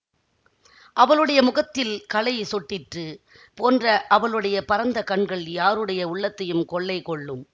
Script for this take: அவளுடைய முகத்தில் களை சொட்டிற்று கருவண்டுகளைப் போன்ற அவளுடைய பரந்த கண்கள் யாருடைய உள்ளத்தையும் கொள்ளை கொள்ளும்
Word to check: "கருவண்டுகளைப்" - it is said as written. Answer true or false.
false